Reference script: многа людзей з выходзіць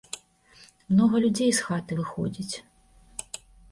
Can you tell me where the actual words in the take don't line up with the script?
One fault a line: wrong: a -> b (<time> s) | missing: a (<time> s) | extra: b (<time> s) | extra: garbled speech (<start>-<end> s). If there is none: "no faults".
extra: хаты (1.7 s)